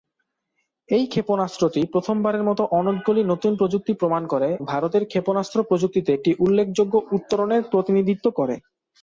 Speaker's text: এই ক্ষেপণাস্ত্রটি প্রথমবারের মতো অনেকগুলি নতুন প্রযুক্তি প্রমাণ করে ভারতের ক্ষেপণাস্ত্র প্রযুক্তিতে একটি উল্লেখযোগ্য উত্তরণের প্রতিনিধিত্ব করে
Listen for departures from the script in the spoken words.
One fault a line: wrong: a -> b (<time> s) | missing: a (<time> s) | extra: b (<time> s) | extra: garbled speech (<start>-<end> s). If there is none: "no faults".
no faults